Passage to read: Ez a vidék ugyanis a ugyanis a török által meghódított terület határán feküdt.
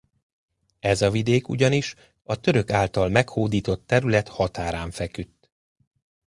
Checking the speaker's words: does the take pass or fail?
fail